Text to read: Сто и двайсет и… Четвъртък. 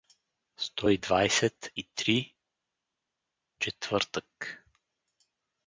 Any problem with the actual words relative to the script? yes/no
yes